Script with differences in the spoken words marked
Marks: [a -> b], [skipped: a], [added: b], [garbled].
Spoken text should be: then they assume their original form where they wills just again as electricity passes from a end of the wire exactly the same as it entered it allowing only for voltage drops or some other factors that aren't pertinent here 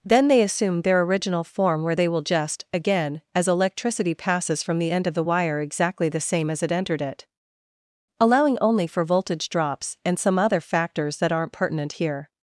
then they assume their original form where they [wills -> will] just again as electricity passes from [a -> the] end of the wire exactly the same as it entered it allowing only for voltage drops [or -> and] some other factors that aren't pertinent here